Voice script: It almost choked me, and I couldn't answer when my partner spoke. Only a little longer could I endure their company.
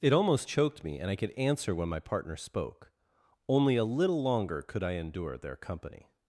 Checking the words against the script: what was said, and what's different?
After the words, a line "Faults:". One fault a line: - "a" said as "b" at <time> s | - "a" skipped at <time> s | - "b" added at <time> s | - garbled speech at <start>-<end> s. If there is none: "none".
It almost choked me, and I could answer when my partner spoke. Only a little longer could I endure their company.
Faults:
- "couldn't" said as "could" at 1.2 s